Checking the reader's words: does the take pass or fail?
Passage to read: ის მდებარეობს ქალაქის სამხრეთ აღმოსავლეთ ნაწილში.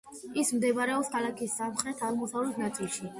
pass